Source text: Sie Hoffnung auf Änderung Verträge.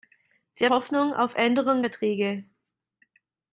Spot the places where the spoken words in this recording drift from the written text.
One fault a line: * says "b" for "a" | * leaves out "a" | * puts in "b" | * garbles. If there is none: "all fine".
all fine